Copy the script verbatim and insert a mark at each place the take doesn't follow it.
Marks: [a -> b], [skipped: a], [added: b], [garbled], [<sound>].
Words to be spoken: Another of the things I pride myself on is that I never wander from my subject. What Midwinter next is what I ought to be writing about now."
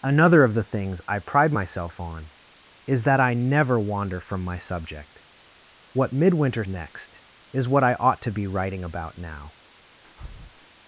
Another of the things I pride myself on is that I never wander from my subject. What Midwinter next is what I ought to be writing about now." [breath]